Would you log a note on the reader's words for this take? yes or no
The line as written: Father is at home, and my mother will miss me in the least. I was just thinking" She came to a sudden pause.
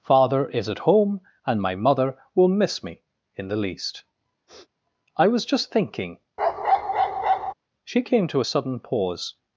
no